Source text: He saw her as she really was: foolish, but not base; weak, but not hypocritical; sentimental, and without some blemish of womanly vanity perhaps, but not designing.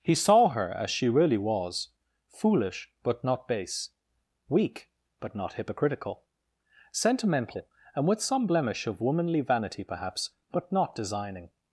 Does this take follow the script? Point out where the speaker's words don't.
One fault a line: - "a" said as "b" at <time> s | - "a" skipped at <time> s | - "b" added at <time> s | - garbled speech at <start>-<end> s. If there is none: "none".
- "without" said as "with" at 8.1 s